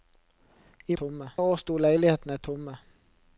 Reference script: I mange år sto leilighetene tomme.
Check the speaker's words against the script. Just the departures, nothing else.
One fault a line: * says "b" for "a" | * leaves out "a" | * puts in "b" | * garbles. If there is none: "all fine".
* says "tomme" for "mange"